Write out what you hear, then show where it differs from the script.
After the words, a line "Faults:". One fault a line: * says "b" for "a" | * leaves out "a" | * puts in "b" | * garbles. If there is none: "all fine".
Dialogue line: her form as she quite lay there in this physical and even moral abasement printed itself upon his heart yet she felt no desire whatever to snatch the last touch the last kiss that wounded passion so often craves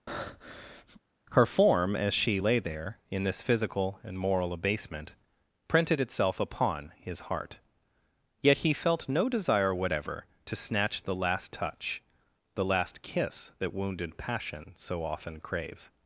her form as she lay there in this physical and moral abasement printed itself upon his heart yet he felt no desire whatever to snatch the last touch the last kiss that wounded passion so often craves
Faults:
* leaves out "quite"
* leaves out "even"
* says "he" for "she"